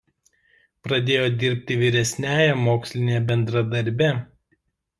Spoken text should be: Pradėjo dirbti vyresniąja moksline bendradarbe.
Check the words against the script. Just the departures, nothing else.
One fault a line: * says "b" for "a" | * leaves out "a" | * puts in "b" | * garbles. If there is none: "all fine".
all fine